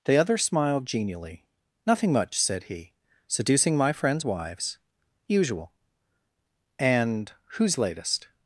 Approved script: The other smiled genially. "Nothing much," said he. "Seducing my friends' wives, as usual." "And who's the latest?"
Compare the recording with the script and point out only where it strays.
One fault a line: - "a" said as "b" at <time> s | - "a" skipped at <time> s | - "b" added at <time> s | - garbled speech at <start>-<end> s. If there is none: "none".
- "as" skipped at 4.8 s
- "the" skipped at 7.8 s